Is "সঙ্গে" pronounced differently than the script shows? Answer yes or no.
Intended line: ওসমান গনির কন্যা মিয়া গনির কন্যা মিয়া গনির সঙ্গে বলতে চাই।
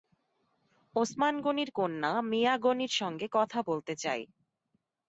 yes